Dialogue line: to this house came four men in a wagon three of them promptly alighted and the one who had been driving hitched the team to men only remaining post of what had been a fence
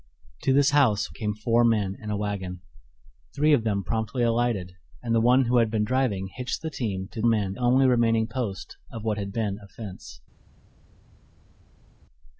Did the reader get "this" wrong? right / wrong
right